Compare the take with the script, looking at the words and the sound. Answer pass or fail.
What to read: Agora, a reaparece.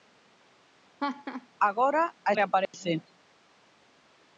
fail